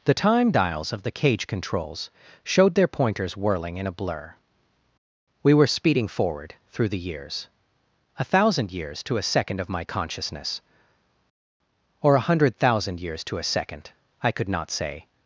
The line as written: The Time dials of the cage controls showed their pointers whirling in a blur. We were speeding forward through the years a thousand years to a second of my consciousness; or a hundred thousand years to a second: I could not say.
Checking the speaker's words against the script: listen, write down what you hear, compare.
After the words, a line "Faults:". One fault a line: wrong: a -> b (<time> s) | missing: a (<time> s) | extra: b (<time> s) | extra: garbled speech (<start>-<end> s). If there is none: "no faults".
The Time dials of the cage controls showed their pointers whirling in a blur. We were speeding forward through the years a thousand years to a second of my consciousness; or a hundred thousand years to a second: I could not say.
Faults:
no faults